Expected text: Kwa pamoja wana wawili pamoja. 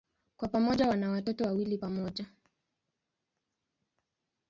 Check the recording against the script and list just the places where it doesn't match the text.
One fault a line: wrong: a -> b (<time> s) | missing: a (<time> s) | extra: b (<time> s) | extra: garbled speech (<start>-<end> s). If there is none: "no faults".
extra: watoto (1.1 s)